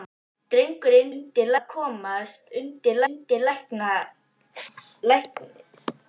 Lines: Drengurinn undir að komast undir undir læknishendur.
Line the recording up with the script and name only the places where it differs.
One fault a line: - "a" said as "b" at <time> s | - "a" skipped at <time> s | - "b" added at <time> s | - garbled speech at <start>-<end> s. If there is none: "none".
none